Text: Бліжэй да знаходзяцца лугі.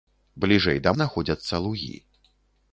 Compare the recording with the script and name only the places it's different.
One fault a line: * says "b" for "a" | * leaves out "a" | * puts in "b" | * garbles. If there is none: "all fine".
all fine